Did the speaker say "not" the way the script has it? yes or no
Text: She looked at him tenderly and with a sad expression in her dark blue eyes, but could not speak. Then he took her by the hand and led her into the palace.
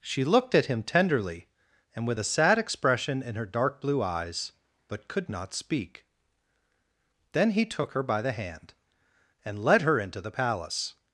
yes